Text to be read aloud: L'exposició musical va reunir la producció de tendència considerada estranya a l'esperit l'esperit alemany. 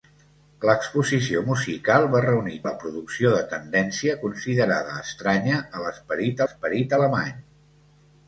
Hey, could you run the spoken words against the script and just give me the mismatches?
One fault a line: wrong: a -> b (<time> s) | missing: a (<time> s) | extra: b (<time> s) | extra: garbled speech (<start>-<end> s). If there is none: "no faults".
no faults